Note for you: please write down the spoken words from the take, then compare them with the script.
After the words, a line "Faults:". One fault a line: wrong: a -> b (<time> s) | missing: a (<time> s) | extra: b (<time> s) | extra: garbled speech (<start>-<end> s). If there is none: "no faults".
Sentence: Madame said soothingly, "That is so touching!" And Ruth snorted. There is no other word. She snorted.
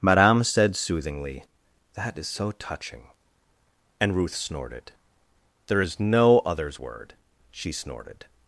Madame said soothingly, "That is so touching!" And Ruth snorted. There is no others word. She snorted.
Faults:
wrong: other -> others (6.4 s)